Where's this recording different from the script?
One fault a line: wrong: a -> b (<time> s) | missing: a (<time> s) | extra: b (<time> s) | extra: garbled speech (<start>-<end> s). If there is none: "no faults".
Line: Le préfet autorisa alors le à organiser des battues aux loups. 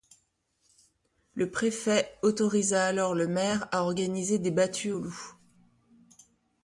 extra: maire (3.3 s)